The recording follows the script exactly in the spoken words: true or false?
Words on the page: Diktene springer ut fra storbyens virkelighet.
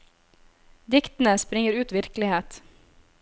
false